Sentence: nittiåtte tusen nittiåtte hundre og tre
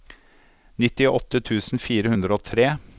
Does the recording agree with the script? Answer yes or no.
no